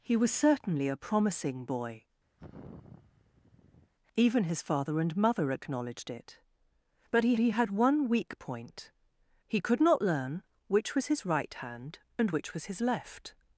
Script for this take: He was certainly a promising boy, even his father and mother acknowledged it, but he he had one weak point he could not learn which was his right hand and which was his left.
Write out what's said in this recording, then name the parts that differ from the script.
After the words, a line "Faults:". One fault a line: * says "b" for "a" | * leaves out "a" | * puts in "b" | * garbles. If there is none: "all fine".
He was certainly a promising boy, even his father and mother acknowledged it, but he he had one weak point he could not learn which was his right hand and which was his left.
Faults:
all fine